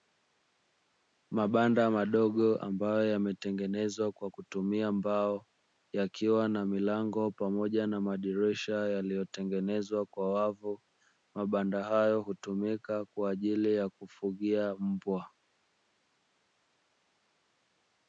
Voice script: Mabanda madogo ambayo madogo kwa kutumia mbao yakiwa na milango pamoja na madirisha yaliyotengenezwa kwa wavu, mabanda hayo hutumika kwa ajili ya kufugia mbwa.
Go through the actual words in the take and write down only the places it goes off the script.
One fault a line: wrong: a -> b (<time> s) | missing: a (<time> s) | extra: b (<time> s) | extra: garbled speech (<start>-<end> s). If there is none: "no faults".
wrong: madogo -> yametengenezwa (3.1 s)